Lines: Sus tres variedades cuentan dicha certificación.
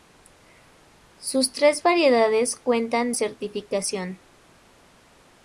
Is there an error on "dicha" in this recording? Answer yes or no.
yes